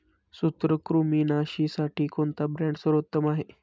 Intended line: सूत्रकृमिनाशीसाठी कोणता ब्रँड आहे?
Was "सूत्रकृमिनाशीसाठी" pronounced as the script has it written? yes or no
yes